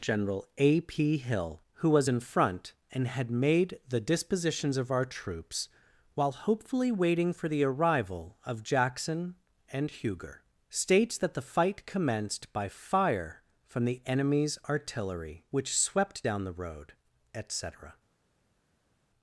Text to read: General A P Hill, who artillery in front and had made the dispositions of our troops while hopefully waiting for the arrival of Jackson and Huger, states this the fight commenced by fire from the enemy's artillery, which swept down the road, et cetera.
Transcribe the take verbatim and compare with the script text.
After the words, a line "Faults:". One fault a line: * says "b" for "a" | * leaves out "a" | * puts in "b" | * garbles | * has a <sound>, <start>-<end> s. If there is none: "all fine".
General A P Hill, who was in front and had made the dispositions of our troops while hopefully waiting for the arrival of Jackson and Huger, states that the fight commenced by fire from the enemy's artillery, which swept down the road, et cetera.
Faults:
* says "was" for "artillery"
* says "that" for "this"